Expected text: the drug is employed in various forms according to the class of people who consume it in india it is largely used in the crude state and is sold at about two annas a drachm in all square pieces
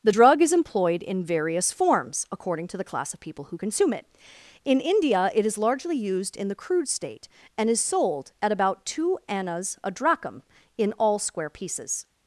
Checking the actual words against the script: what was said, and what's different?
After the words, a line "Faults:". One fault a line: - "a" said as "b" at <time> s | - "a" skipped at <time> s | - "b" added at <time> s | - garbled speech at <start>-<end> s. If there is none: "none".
the drug is employed in various forms according to the class of people who consume it in india it is largely used in the crude state and is sold at about two annas a drachm in all square pieces
Faults:
none